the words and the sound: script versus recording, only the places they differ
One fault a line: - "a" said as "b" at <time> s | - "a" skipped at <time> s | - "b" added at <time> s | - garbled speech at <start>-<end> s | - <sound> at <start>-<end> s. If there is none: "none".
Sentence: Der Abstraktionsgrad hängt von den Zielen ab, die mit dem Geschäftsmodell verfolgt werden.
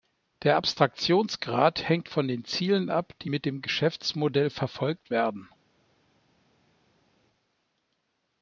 none